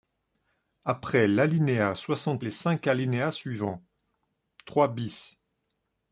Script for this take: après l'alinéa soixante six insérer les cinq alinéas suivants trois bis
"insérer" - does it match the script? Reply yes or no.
no